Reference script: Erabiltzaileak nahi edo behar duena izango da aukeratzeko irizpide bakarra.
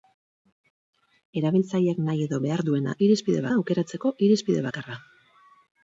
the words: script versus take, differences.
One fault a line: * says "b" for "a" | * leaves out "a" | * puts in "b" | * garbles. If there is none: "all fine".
* says "irizpide" for "izango"